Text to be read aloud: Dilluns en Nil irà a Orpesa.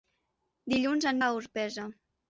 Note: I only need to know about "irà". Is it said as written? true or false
false